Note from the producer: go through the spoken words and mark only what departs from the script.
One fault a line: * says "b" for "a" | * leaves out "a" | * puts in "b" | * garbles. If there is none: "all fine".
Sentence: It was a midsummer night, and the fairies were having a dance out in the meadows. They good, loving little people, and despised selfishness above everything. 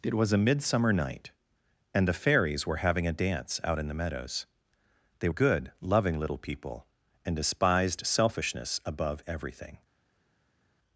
all fine